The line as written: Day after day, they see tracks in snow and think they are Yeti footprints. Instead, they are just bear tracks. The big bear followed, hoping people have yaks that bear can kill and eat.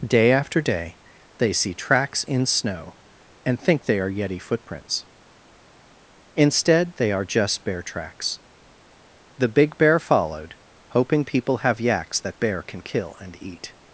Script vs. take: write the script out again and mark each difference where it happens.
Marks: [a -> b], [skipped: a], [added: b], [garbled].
Day after day, they see tracks in snow and think they are Yeti footprints. Instead, they are just bear tracks. The big bear followed, hoping people have yaks that bear can kill and eat.